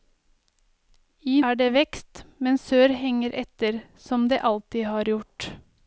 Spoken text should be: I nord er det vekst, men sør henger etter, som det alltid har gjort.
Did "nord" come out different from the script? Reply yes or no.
yes